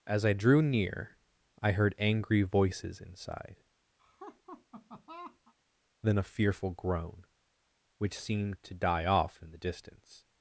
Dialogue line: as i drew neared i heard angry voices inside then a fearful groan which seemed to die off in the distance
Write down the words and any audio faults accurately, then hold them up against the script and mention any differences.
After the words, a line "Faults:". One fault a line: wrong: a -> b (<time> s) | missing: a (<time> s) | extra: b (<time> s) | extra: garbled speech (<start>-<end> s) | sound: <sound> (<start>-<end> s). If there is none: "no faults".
as i drew near i heard angry voices inside then a fearful groan which seemed to die off in the distance
Faults:
wrong: neared -> near (0.6 s)
sound: laugh (4.0-5.5 s)